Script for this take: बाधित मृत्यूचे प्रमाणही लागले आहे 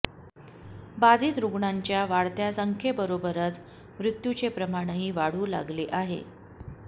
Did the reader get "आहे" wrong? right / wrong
right